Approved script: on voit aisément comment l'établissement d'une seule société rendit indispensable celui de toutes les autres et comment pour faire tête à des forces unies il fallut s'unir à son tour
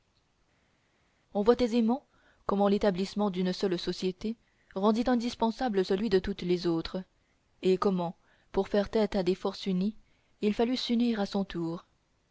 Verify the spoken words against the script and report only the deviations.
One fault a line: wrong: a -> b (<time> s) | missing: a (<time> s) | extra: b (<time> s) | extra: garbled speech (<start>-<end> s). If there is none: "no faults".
no faults